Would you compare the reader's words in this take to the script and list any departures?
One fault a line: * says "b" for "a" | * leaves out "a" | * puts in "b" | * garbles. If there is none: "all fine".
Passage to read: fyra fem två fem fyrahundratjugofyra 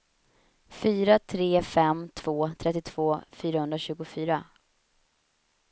* puts in "tre"
* says "trettiotvå" for "fem"